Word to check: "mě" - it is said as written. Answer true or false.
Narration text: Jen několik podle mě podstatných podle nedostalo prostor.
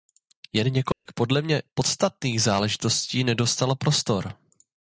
true